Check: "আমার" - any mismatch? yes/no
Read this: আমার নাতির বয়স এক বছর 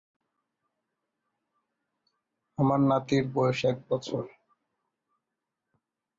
no